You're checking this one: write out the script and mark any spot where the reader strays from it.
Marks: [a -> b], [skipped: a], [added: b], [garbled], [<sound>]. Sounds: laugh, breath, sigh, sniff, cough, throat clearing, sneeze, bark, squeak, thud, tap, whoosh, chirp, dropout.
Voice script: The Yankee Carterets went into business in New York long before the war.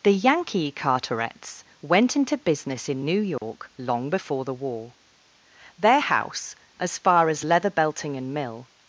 The Yankee Carterets went into business in New York [dropout] long before the war. [added: Their house as far as Leather Belting and Mill]